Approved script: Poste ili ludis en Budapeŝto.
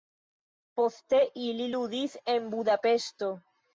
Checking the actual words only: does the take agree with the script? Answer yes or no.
yes